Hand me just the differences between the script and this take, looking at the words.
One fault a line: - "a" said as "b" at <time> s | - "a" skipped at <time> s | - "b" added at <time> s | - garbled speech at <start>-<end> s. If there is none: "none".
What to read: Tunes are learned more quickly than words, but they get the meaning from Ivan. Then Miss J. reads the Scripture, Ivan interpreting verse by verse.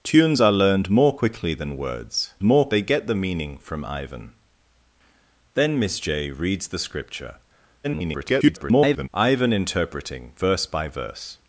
- "but" said as "more" at 2.4 s
- garbled speech at 7.8-9.1 s